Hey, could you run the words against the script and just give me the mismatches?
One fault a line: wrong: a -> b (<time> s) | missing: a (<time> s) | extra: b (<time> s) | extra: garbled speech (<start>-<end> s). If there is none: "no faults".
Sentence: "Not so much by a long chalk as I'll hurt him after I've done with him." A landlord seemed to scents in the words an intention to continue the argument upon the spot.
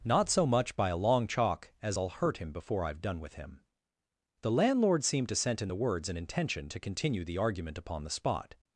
wrong: after -> before (2.5 s)
wrong: A -> The (4.4 s)
wrong: scents -> scent (5.4 s)